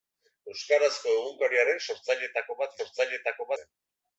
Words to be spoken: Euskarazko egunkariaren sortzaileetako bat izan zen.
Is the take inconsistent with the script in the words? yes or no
yes